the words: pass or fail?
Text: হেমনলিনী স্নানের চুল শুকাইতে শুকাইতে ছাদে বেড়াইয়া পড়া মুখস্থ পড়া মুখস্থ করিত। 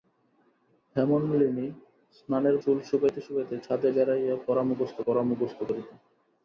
pass